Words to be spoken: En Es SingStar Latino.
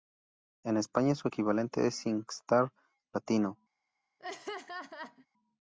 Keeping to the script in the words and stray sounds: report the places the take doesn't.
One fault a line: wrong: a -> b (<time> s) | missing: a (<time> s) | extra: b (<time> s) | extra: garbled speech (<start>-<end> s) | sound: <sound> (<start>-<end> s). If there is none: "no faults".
extra: España su equivalente (0.8 s)
sound: laugh (4.2-5.3 s)